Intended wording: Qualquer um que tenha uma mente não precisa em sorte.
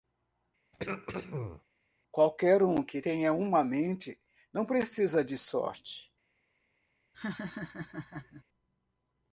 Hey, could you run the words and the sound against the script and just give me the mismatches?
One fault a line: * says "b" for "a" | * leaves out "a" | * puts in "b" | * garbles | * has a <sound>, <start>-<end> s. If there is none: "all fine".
* has a throat clearing, 0.7-1.6 s
* says "de" for "em"
* has a laugh, 7.1-8.4 s